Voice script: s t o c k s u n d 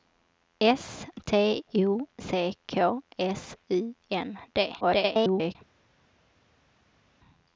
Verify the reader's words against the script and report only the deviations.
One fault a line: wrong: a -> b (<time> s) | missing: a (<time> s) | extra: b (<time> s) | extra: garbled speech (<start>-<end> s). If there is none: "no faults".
extra: garbled speech (4.8-5.6 s)